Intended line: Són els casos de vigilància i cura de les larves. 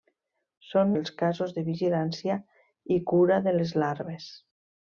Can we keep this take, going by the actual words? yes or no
yes